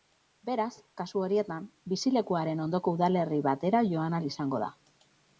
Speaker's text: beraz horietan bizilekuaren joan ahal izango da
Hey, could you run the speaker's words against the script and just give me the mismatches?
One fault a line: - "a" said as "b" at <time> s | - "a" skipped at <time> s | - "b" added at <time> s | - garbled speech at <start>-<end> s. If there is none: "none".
- "kasu" added at 1.0 s
- "ondoko udalerri batera" added at 2.7 s